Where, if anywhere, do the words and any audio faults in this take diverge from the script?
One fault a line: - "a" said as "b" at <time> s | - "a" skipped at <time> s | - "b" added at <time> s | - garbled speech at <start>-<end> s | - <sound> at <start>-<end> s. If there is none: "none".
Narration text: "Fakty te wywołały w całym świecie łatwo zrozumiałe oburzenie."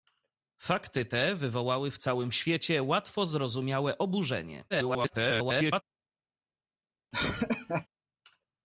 - garbled speech at 4.7-5.8 s
- laugh at 7.1-7.9 s